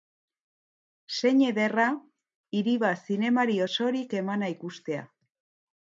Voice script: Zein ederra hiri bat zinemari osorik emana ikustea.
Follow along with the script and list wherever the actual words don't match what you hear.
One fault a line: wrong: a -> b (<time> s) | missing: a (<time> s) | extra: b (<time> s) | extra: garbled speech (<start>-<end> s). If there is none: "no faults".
no faults